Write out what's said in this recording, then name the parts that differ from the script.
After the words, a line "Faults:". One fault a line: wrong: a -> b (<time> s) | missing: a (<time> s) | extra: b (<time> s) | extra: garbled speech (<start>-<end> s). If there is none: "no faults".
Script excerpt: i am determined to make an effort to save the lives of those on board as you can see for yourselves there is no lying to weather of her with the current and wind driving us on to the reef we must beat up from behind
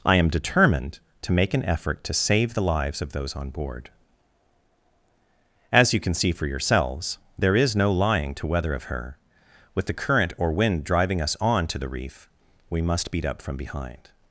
i am determined to make an effort to save the lives of those on board as you can see for yourselves there is no lying to weather of her with the current or wind driving us on to the reef we must beat up from behind
Faults:
wrong: and -> or (10.4 s)